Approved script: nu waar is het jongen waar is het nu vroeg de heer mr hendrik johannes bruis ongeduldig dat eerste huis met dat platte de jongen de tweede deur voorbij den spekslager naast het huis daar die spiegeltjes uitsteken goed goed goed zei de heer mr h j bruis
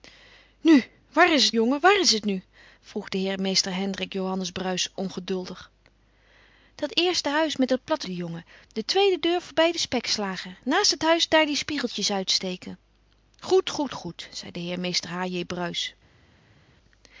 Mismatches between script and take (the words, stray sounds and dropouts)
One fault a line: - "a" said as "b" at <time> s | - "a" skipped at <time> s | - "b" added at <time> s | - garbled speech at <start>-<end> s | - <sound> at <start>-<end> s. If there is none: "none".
none